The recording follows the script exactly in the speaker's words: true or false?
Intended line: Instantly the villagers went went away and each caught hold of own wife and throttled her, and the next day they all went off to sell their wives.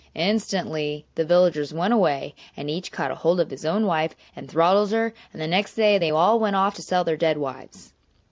false